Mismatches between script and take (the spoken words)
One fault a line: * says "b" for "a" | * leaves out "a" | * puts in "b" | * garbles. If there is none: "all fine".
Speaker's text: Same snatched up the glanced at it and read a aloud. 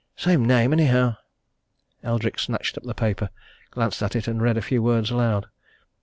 * puts in "name anyhow Eldrick"
* puts in "paper"
* puts in "few words"